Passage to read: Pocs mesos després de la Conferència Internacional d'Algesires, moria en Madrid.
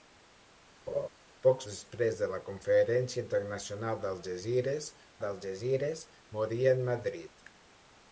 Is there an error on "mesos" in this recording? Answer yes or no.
yes